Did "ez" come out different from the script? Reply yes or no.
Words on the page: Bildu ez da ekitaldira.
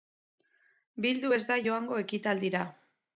no